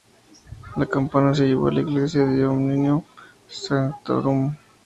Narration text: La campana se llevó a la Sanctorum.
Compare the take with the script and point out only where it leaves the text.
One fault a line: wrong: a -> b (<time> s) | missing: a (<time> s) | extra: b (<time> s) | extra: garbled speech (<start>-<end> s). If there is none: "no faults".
extra: Iglesia de Omnium (1.8 s)